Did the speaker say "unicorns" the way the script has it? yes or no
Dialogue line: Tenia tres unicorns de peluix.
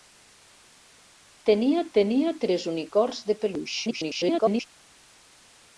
yes